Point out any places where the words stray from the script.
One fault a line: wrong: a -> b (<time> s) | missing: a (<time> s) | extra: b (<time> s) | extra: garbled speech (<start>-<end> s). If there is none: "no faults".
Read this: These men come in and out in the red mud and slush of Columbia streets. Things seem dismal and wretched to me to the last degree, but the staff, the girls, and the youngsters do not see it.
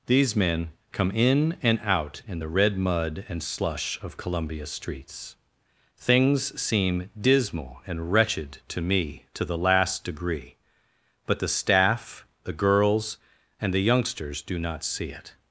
no faults